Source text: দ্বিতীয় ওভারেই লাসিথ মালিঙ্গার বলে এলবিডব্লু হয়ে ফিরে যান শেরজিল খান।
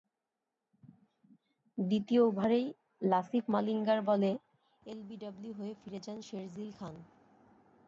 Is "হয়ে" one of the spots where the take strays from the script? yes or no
no